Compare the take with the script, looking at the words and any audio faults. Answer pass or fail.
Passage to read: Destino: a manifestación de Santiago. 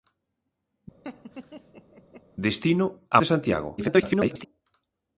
fail